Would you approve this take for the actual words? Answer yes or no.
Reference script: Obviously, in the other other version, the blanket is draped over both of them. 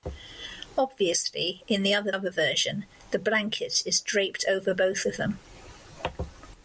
yes